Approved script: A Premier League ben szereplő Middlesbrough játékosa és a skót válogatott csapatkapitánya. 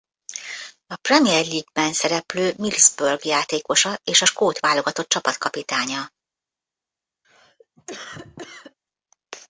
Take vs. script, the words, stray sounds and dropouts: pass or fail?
fail